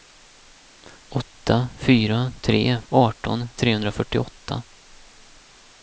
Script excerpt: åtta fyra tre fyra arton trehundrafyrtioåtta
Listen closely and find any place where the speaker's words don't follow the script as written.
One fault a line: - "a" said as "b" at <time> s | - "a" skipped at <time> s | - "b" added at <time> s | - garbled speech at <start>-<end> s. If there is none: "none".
- "fyra" skipped at 2.8 s